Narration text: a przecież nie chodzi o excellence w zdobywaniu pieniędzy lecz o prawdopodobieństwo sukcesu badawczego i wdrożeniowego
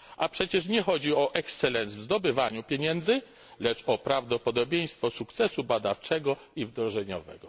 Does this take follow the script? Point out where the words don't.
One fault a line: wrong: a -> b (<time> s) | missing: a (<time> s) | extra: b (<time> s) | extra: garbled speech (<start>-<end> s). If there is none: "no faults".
no faults